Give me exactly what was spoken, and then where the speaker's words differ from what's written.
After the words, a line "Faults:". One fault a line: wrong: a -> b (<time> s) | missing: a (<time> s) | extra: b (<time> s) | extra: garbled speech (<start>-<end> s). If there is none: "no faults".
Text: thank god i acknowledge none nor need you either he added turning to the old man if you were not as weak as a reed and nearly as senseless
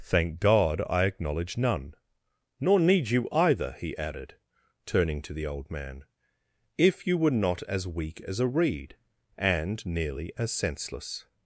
thank god i acknowledge none nor need you either he added turning to the old man if you were not as weak as a reed and nearly as senseless
Faults:
no faults